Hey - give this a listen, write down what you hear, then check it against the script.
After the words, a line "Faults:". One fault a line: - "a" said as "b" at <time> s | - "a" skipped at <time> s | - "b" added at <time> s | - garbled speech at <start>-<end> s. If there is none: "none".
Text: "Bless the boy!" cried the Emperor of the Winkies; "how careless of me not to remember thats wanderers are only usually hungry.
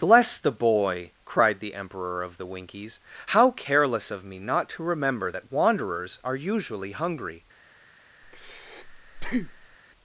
"Bless the boy!" cried the Emperor of the Winkies; "how careless of me not to remember that wanderers are usually hungry.
Faults:
- "thats" said as "that" at 5.3 s
- "only" skipped at 6.4 s